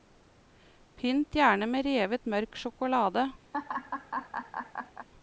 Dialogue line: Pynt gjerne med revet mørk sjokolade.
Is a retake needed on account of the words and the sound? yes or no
yes